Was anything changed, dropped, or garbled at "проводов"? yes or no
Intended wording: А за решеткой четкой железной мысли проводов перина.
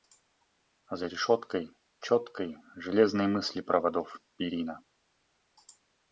no